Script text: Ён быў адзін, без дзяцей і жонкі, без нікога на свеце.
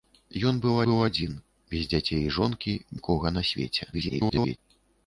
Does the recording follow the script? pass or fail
fail